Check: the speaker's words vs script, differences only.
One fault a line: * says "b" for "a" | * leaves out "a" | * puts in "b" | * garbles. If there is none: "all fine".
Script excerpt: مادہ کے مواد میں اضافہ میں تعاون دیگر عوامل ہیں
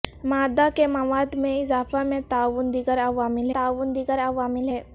* puts in "تعاون دیگر عوامل"